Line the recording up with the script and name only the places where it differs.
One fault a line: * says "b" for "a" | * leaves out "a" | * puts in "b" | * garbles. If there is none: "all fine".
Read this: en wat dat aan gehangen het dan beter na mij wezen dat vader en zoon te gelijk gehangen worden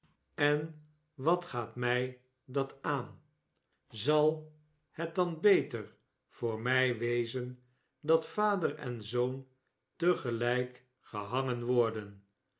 * puts in "gaat mij"
* says "zal" for "gehangen"
* says "voor" for "na"